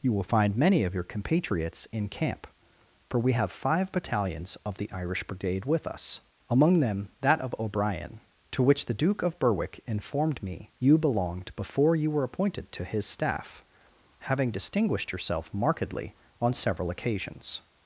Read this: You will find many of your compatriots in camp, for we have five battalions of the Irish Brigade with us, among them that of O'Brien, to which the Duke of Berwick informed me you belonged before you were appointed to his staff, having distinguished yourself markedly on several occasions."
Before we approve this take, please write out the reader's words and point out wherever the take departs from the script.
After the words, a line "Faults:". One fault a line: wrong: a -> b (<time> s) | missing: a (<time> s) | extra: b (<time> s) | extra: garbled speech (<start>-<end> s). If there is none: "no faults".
You will find many of your compatriots in camp, for we have five battalions of the Irish Brigade with us, among them that of O'Brien, to which the Duke of Berwick informed me you belonged before you were appointed to his staff, having distinguished yourself markedly on several occasions."
Faults:
no faults